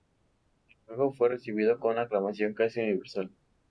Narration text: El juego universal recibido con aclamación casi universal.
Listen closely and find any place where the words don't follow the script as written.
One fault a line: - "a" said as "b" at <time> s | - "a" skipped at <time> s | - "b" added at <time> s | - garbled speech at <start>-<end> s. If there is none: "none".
- "universal" said as "fue" at 1.1 s